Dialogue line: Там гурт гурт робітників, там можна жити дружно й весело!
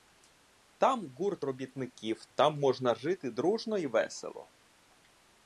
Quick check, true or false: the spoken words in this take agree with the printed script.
false